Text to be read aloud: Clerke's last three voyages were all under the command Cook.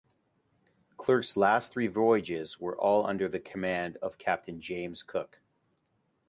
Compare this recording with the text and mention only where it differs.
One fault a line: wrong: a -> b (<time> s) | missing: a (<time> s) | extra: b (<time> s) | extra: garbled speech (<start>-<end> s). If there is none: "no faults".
extra: of Captain James (4.0 s)